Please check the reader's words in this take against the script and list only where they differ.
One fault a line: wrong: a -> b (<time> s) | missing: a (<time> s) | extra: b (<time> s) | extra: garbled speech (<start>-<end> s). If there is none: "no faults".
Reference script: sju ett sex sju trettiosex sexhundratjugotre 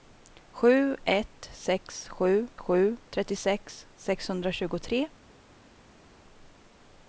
extra: sju (2.6 s)